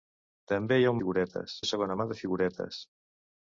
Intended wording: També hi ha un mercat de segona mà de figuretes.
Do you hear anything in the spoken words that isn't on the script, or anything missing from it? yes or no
yes